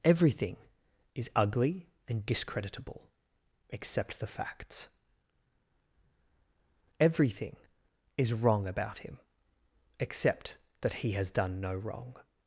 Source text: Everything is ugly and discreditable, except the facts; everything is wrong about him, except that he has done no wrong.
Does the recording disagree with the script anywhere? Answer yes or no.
no